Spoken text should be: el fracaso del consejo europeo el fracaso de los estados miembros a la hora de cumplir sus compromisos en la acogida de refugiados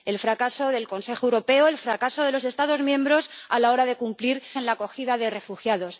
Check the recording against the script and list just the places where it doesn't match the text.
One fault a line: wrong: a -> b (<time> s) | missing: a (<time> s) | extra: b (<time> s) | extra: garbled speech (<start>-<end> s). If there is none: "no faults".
missing: sus compromisos (4.4 s)